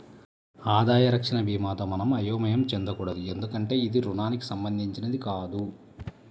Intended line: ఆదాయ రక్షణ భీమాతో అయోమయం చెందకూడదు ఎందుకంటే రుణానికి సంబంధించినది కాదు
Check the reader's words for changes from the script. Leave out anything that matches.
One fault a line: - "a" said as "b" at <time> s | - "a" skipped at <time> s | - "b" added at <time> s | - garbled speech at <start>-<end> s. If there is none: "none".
- "మనం" added at 1.9 s
- "ఇది" added at 3.8 s